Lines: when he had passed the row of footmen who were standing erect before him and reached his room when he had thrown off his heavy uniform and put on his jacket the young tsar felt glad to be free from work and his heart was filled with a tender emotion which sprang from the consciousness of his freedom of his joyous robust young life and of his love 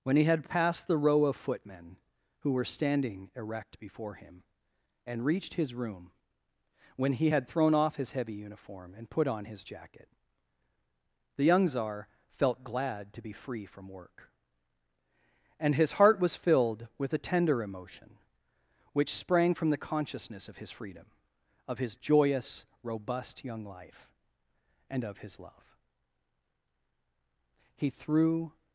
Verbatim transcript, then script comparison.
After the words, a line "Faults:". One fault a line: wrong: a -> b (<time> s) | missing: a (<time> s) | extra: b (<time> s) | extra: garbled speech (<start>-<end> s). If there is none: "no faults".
when he had passed the row of footmen who were standing erect before him and reached his room when he had thrown off his heavy uniform and put on his jacket the young tsar felt glad to be free from work and his heart was filled with a tender emotion which sprang from the consciousness of his freedom of his joyous robust young life and of his love he threw
Faults:
extra: he threw (27.7 s)